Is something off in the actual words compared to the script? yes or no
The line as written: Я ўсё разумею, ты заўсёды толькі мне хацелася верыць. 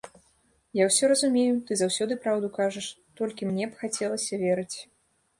yes